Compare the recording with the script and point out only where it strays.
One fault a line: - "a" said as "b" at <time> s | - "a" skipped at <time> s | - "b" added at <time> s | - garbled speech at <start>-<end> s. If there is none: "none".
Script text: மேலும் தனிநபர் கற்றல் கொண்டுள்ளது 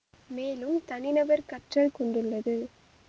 none